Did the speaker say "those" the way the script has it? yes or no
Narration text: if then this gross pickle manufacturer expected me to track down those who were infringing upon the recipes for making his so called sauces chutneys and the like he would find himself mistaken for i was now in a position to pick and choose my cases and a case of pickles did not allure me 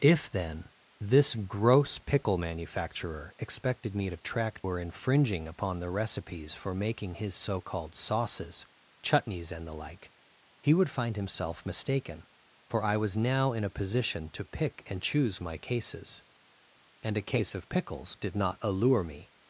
no